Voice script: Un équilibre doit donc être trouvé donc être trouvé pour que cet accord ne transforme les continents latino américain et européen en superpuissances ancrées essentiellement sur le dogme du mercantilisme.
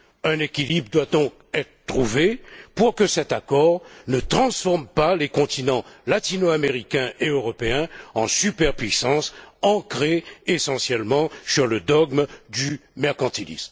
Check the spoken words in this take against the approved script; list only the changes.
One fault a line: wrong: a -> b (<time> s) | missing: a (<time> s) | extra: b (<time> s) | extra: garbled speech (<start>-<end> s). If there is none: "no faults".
missing: donc être trouvé (2.4 s)
extra: pas (4.9 s)